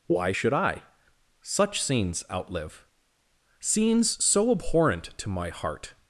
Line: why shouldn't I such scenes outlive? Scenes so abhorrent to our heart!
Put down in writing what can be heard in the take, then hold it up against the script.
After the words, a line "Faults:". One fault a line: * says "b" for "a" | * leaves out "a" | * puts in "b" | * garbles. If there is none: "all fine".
why should I such scenes outlive? Scenes so abhorrent to my heart!
Faults:
* says "should" for "shouldn't"
* says "my" for "our"